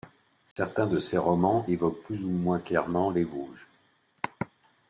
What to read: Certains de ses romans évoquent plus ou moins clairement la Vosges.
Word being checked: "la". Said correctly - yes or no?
no